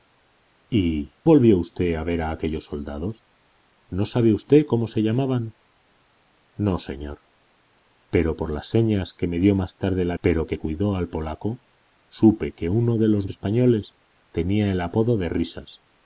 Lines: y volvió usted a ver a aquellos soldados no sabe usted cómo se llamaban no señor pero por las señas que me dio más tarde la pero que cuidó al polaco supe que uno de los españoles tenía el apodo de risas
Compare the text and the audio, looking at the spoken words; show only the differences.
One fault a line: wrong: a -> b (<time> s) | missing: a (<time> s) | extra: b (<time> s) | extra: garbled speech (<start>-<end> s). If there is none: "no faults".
no faults